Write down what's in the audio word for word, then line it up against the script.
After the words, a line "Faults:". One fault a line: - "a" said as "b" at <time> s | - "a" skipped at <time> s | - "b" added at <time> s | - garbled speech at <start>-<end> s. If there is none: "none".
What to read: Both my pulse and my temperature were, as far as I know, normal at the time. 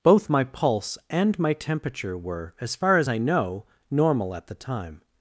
Both my pulse and my temperature were, as far as I know, normal at the time.
Faults:
none